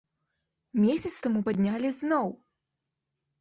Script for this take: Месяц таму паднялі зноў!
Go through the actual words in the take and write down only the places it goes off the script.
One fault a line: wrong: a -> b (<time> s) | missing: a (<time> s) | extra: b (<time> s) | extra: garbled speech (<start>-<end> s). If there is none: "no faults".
no faults